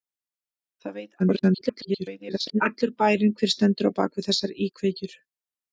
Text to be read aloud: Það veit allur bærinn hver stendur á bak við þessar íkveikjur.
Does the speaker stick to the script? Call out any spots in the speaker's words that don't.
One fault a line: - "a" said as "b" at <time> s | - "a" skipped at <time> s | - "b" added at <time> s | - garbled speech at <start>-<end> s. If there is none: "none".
- garbled speech at 1.2-2.6 s